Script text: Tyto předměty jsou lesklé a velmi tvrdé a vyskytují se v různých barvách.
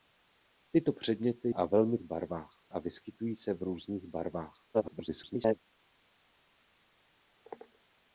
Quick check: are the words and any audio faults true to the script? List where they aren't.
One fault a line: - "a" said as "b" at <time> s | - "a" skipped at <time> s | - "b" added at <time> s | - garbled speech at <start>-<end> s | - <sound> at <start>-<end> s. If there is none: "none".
- "jsou lesklé" skipped at 1.5 s
- "tvrdé" said as "barvách" at 2.0 s
- garbled speech at 4.7-5.6 s